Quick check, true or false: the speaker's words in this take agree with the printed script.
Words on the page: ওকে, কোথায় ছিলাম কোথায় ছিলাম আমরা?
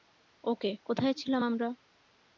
false